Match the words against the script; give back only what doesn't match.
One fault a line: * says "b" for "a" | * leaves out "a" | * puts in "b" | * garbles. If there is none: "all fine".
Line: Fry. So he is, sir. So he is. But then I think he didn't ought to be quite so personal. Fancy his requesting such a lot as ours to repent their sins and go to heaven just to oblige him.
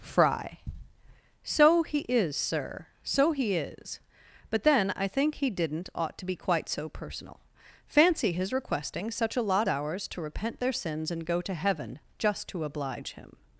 * leaves out "as"